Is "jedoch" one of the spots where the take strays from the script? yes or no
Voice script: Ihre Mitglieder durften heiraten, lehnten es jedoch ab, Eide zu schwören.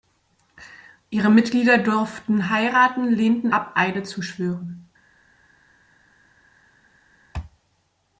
yes